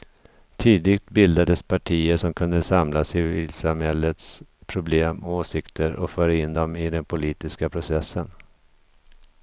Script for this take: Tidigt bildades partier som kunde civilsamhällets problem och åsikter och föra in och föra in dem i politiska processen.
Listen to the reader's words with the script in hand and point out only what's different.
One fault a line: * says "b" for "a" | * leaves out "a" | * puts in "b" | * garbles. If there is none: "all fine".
* puts in "samla"
* leaves out "och föra in"
* puts in "den"